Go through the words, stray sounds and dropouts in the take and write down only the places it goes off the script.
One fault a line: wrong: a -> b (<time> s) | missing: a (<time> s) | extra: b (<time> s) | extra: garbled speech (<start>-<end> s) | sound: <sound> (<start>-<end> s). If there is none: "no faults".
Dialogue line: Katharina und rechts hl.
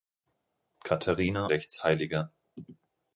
missing: und (1.5 s)